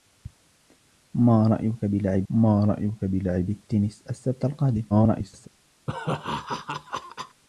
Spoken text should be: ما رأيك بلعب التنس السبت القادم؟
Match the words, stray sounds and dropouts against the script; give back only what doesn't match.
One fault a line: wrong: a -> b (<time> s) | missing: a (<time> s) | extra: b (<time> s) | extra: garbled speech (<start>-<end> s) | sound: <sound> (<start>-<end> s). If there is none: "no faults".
extra: ما رأيك بلعب (2.3 s)
extra: garbled speech (4.9-5.5 s)
sound: laugh (5.9-7.4 s)